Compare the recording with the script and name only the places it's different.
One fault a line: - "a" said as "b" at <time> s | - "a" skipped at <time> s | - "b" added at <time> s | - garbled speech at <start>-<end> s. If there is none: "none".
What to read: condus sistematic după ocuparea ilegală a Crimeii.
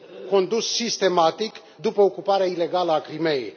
none